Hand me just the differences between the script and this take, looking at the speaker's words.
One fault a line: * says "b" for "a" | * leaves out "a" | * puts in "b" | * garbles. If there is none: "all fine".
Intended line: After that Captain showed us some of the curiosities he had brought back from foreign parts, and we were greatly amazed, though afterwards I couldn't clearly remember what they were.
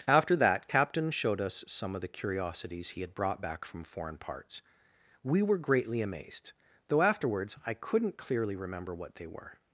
* leaves out "and"